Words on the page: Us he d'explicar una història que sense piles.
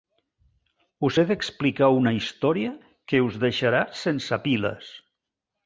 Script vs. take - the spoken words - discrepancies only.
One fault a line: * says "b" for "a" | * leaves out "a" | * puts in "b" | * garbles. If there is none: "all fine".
* puts in "us deixarà"